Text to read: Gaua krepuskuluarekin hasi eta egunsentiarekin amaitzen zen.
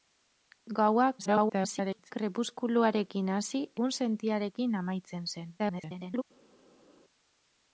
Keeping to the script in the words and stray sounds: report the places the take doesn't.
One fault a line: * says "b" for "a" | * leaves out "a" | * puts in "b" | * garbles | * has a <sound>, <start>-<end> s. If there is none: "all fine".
* garbles
* leaves out "eta"
* garbles